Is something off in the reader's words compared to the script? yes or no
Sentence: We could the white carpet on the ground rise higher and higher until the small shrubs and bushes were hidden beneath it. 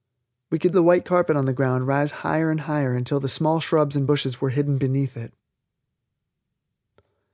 no